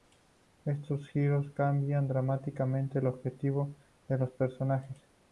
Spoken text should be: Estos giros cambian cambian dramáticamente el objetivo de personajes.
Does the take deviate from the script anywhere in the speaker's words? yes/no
yes